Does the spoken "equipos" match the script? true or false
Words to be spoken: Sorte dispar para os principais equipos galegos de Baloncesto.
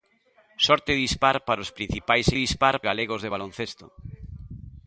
false